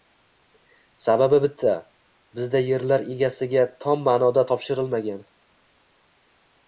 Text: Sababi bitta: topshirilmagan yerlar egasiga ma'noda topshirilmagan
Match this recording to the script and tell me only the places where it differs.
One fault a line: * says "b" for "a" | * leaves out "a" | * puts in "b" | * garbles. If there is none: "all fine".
* says "bizda" for "topshirilmagan"
* puts in "tom"